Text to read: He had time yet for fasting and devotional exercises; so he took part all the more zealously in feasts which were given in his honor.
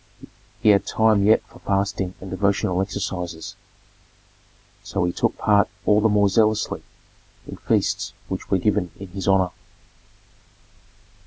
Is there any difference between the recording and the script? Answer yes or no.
no